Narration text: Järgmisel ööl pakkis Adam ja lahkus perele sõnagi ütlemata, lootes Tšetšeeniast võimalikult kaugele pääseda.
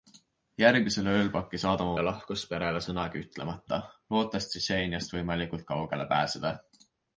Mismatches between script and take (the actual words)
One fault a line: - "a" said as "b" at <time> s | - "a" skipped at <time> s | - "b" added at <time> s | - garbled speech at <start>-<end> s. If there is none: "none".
none